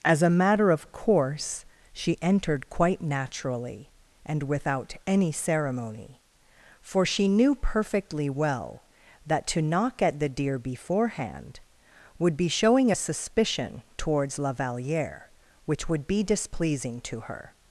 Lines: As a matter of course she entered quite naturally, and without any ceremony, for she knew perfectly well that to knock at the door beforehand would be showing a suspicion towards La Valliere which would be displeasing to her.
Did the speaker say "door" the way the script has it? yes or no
no